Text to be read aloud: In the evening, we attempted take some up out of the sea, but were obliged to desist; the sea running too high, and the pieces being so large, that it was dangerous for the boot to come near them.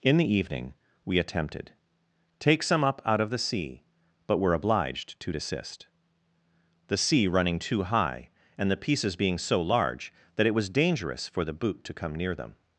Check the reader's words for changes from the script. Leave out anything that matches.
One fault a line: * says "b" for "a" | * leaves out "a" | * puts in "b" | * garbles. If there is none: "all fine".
all fine